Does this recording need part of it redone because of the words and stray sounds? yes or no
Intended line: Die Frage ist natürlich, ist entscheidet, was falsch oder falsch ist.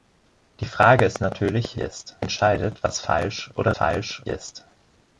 no